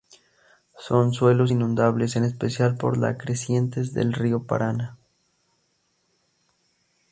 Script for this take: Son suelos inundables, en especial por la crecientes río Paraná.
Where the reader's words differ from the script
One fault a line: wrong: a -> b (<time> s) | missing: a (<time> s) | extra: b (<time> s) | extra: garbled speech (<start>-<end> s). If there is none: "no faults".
extra: del (3.9 s)